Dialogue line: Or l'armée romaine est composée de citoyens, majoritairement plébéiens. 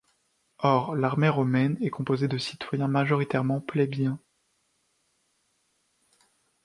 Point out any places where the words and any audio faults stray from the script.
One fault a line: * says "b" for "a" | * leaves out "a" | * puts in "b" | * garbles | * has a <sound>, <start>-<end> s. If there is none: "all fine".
all fine